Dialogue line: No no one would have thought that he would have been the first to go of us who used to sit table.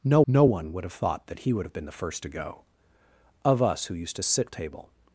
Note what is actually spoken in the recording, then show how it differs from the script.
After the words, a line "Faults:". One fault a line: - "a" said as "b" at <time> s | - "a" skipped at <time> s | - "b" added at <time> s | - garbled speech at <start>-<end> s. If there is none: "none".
No no one would have thought that he would have been the first to go of us who used to sit table.
Faults:
none